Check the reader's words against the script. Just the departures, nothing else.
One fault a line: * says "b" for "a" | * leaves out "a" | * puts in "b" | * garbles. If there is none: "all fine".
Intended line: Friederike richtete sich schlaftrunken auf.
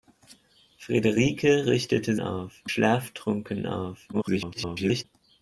* says "auf" for "sich"
* garbles